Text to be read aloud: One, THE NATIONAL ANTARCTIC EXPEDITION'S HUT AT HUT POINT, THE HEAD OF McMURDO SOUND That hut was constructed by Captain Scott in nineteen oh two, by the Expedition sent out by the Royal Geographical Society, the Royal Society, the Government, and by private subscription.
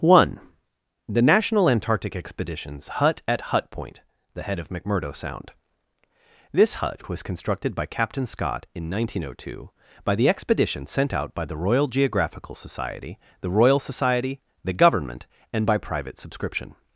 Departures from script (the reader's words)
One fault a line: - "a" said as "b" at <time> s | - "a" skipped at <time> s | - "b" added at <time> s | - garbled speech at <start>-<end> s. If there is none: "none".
- "That" said as "This" at 6.5 s